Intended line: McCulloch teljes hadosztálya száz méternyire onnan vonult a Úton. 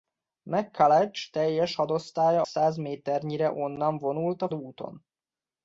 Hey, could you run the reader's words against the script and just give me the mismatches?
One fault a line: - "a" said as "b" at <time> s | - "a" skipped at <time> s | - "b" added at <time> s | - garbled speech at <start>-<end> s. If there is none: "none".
none